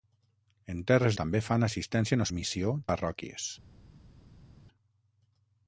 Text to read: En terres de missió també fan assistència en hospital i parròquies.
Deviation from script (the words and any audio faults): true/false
true